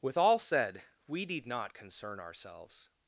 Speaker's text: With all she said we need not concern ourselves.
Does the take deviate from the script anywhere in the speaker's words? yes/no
yes